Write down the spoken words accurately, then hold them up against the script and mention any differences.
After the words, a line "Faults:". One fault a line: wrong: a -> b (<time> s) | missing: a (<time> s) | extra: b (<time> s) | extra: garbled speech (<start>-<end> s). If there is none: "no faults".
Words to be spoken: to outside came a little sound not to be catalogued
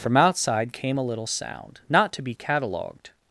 from outside came a little sound not to be catalogued
Faults:
wrong: to -> from (0.0 s)